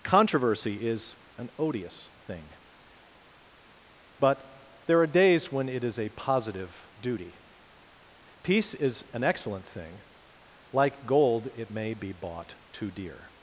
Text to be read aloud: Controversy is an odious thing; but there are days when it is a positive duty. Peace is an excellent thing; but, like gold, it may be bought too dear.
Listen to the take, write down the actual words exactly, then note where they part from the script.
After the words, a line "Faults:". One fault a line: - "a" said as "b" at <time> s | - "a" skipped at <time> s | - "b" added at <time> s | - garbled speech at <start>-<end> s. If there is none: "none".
Controversy is an odious thing; but there are days when it is a positive duty. Peace is an excellent thing; like gold, it may be bought too dear.
Faults:
- "but" skipped at 10.0 s